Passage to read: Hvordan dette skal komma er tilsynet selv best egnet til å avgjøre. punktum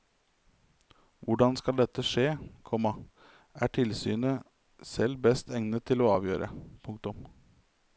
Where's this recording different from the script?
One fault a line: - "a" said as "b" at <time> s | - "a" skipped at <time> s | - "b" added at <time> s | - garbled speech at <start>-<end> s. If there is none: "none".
- "skje" added at 2.1 s